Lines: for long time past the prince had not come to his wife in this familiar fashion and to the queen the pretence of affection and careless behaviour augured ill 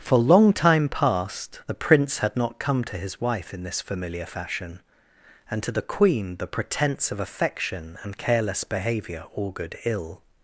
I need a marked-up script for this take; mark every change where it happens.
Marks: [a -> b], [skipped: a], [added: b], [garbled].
for long time past the prince had not come to his wife in this familiar fashion and to the queen the pretence of affection and careless behaviour augured ill